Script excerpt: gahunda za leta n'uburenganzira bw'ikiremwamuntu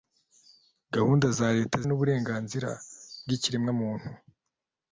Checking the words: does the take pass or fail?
pass